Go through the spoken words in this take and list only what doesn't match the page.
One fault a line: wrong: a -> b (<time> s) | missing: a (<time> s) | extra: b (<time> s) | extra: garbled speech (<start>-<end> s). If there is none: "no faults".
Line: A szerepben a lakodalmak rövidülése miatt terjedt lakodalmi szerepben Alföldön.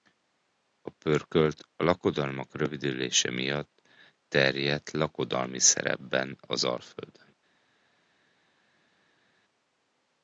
wrong: szerepben -> pörkölt (0.9 s)
extra: az (6.4 s)